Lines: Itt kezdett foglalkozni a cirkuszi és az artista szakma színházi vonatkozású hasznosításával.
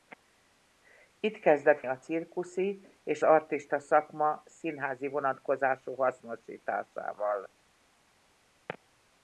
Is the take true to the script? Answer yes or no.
no